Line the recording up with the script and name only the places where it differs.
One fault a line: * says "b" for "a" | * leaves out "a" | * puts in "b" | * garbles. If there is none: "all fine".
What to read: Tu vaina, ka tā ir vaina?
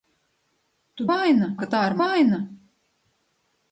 all fine